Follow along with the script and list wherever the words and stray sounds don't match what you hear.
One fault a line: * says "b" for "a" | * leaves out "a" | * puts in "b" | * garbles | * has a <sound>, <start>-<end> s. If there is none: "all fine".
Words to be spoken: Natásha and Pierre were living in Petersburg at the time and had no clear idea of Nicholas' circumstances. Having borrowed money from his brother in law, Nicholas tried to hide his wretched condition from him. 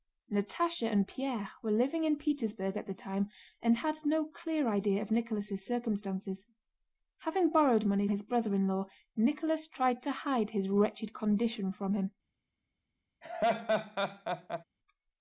* leaves out "from"
* has a laugh, 13.2-14.6 s